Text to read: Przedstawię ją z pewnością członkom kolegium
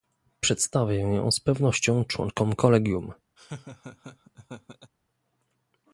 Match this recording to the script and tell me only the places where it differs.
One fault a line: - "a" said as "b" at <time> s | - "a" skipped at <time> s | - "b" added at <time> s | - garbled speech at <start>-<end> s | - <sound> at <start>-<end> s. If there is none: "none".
- laugh at 3.4-4.9 s